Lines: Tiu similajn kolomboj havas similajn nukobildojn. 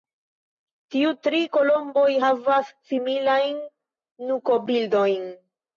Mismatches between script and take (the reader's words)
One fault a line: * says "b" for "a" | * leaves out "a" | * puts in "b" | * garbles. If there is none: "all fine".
* says "tri" for "similajn"